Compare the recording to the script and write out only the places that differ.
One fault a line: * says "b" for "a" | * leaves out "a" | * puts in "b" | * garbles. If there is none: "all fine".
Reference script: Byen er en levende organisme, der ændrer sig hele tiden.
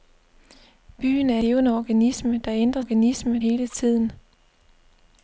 * leaves out "en"
* says "organisme" for "sig"